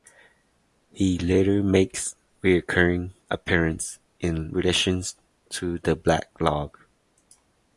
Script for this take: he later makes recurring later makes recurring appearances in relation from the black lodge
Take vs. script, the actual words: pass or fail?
fail